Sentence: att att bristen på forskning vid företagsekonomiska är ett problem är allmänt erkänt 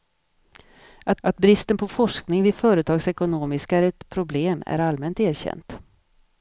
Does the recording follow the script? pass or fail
pass